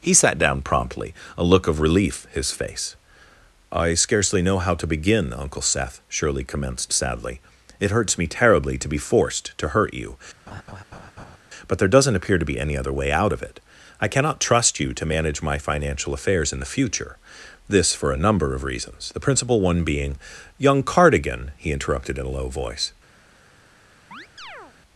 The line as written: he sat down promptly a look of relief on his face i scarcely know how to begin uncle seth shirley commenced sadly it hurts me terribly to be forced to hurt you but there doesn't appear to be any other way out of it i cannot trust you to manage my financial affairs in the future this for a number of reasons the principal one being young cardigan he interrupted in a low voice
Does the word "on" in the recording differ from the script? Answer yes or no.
yes